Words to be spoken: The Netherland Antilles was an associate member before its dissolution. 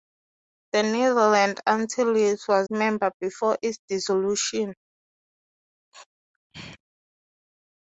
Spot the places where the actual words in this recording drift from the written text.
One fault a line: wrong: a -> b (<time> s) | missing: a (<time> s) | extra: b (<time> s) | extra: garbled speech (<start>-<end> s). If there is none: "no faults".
missing: an associate (2.7 s)